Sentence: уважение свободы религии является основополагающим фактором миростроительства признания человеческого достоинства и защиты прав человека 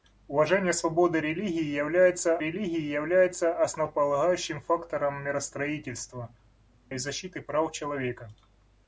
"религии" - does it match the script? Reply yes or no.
yes